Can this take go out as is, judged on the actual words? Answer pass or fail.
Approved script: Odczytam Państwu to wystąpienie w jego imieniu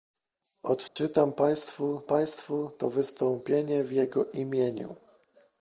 fail